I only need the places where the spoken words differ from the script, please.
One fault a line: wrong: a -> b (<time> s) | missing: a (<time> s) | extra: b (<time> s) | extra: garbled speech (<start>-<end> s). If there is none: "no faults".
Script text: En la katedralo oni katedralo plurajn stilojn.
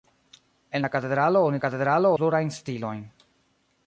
no faults